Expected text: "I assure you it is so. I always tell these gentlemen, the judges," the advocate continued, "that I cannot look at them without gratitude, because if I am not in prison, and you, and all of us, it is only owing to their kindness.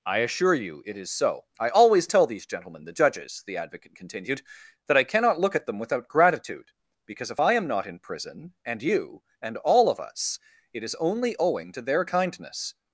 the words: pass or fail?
pass